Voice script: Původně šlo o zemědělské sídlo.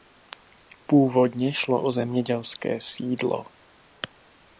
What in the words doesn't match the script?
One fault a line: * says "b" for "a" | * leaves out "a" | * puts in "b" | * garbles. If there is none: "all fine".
all fine